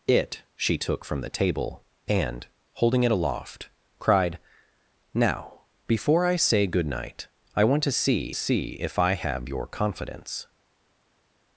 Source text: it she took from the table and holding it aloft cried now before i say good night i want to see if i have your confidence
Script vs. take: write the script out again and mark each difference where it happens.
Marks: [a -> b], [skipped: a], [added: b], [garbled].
it she took from the table and holding it aloft cried now before i say good night i want to see [added: see] if i have your confidence